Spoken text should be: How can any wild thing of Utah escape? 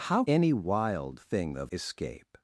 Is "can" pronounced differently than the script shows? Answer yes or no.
yes